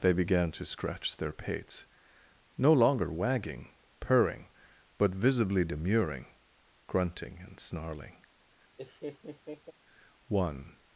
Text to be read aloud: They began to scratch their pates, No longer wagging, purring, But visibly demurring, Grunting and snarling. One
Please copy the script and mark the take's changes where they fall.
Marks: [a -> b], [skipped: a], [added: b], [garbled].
They began to scratch their pates, No longer wagging, purring, But visibly demurring, Grunting and snarling. One